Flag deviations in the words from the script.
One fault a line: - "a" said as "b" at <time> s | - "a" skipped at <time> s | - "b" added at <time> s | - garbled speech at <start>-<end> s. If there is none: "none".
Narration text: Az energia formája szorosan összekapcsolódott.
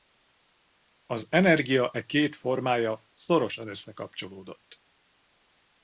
- "e két" added at 1.9 s